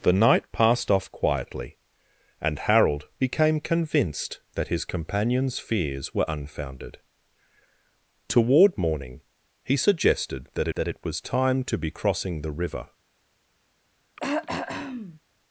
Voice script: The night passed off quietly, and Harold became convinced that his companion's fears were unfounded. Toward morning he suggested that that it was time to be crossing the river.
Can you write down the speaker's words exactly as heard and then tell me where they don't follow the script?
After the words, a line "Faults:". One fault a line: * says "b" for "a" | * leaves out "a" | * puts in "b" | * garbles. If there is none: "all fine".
The night passed off quietly, and Harold became convinced that his companion's fears were unfounded. Toward morning he suggested that that it was time to be crossing the river.
Faults:
all fine